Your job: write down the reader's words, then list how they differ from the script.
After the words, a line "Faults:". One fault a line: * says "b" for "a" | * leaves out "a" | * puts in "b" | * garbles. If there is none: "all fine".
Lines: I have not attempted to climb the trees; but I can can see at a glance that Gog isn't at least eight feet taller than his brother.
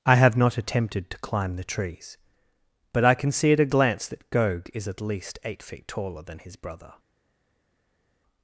I have not attempted to climb the trees; but I can see at a glance that Gog is at least eight feet taller than his brother.
Faults:
* leaves out "can"
* says "is" for "isn't"